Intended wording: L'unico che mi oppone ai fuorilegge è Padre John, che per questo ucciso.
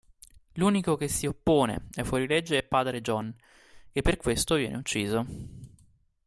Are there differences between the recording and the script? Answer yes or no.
yes